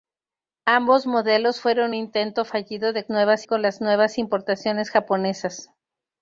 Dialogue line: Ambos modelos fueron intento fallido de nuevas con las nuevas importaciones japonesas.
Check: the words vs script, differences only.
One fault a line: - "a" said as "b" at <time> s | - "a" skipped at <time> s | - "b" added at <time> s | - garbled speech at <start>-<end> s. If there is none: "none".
none